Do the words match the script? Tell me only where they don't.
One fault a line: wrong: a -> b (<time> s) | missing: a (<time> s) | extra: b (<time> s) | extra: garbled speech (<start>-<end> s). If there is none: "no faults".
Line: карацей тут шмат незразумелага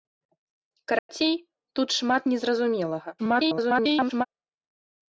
extra: garbled speech (3.2-4.3 s)